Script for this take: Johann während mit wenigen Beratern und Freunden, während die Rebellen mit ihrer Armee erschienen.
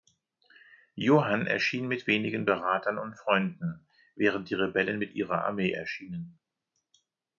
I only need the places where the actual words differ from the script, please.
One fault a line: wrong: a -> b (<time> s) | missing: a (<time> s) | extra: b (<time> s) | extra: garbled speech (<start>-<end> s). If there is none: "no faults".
wrong: während -> erschien (1.4 s)